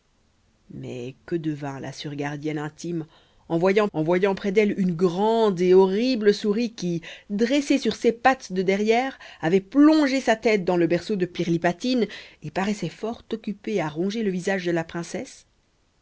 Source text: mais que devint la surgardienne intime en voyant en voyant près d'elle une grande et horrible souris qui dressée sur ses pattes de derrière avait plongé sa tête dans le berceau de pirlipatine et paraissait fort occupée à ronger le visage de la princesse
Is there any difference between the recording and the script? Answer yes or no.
no